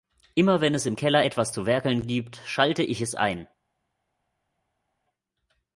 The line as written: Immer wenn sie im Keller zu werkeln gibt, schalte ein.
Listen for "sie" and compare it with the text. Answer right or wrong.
wrong